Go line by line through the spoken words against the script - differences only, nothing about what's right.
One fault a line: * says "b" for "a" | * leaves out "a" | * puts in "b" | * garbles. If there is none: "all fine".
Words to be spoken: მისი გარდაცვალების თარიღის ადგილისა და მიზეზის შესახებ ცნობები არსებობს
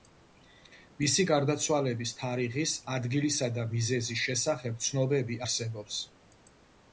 all fine